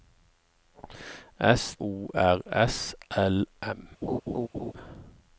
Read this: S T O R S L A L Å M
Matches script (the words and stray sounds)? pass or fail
fail